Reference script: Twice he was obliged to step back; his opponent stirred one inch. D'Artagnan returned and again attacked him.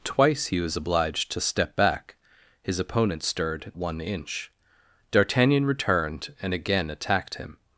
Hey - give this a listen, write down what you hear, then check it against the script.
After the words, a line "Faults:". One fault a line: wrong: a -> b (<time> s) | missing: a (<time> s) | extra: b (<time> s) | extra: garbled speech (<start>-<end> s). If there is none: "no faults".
Twice he was obliged to step back; his opponent stirred one inch. D'Artagnan returned and again attacked him.
Faults:
no faults